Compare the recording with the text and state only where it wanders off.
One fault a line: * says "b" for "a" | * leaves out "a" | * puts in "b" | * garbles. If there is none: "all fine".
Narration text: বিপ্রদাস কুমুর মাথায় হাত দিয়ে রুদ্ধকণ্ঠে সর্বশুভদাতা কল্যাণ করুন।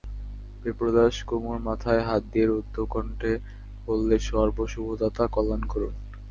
* puts in "বললে"